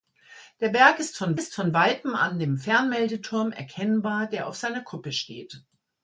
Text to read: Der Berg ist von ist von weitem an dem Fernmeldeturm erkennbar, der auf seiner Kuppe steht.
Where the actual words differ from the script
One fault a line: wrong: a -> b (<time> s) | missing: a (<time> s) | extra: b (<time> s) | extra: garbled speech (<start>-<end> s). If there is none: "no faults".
no faults